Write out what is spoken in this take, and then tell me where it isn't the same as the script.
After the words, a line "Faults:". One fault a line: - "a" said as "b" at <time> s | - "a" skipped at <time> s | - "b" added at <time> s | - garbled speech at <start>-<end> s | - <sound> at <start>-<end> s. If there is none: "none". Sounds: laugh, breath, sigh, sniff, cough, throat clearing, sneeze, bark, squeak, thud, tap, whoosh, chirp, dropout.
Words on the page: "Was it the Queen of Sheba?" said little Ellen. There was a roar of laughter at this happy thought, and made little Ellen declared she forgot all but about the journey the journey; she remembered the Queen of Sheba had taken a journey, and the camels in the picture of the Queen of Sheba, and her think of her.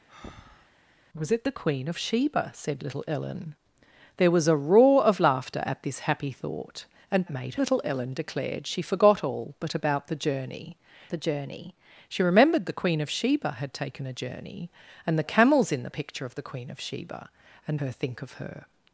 "Was it the Queen of Sheba?" said little Ellen. There was a roar of laughter at this happy thought, and made little Ellen declared she forgot all but about the journey the journey; she remembered the Queen of Sheba had taken a journey, and the camels in the picture of the Queen of Sheba, and her think of her.
Faults:
- breath at 0.1-0.7 s